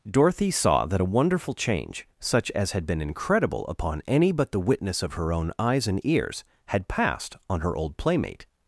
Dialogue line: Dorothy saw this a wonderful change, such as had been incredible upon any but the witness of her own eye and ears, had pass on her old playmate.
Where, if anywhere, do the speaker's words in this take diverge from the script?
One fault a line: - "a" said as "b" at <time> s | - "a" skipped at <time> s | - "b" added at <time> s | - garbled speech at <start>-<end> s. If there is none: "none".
- "this" said as "that" at 0.9 s
- "eye" said as "eyes" at 5.6 s
- "pass" said as "passed" at 6.9 s